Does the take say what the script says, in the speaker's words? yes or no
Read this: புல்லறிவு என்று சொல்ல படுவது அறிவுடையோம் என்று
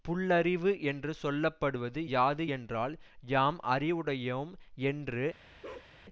no